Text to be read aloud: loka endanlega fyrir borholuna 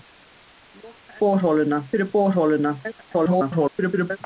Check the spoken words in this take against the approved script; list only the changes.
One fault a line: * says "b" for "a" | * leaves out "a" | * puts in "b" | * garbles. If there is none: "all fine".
* says "borholuna" for "endanlega"
* garbles